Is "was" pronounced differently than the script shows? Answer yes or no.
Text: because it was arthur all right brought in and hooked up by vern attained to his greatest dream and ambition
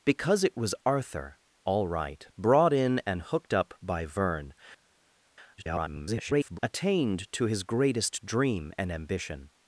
no